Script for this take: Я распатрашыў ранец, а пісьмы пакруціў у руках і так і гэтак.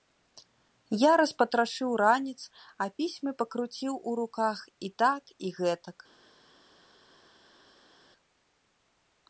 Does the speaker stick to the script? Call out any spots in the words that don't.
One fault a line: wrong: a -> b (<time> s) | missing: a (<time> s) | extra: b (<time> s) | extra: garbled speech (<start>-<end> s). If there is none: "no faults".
no faults